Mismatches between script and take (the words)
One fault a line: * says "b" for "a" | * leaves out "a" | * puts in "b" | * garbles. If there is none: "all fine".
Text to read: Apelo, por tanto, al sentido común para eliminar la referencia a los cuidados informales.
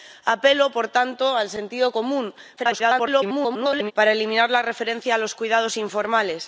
* garbles